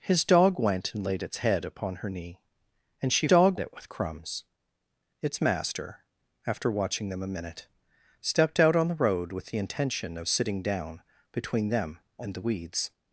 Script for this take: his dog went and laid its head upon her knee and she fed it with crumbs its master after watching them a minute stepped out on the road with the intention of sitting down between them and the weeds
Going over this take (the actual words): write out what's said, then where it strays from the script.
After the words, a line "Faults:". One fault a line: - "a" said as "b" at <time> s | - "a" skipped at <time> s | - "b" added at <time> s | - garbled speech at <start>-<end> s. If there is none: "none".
his dog went and laid its head upon her knee and she dog it with crumbs its master after watching them a minute stepped out on the road with the intention of sitting down between them and the weeds
Faults:
- "fed" said as "dog" at 3.3 s